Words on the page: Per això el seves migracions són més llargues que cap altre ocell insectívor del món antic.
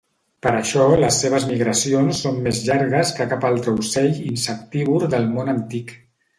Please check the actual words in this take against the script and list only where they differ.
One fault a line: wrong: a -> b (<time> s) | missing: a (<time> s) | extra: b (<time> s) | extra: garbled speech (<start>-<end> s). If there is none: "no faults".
wrong: el -> les (1.0 s)